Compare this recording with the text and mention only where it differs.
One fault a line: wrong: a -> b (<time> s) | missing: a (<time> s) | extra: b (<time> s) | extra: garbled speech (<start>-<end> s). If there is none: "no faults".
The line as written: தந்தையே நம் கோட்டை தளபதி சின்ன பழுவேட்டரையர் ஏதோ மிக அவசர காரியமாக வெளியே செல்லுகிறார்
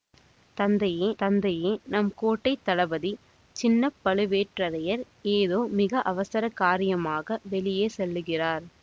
extra: தந்தையே (1.2 s)